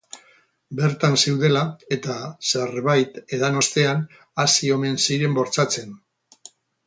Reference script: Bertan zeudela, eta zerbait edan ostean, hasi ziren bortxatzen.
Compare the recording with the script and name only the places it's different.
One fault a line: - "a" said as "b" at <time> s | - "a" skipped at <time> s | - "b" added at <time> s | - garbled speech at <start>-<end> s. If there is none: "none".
- "omen" added at 4.8 s